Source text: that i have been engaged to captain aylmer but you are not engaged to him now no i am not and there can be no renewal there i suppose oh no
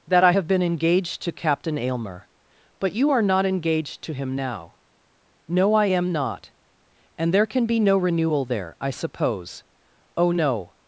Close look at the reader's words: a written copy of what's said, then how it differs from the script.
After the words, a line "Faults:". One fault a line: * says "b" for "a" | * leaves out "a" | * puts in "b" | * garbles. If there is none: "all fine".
that i have been engaged to captain aylmer but you are not engaged to him now no i am not and there can be no renewal there i suppose oh no
Faults:
all fine